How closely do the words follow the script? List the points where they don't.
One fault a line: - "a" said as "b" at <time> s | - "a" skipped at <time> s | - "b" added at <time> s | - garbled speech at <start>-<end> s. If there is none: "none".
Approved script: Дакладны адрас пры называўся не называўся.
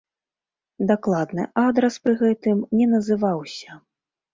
- "называўся" said as "гэтым" at 2.2 s